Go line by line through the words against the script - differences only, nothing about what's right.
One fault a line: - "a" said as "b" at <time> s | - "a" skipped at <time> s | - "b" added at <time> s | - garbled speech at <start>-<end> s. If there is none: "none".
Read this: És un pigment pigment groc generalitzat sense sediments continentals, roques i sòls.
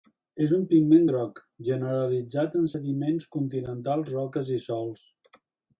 - "pigment" skipped at 1.1 s
- "sense" said as "en" at 2.6 s